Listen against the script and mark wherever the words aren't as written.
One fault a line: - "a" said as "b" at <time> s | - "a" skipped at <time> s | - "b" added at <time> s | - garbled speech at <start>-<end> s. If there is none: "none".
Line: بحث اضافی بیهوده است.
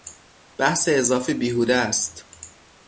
none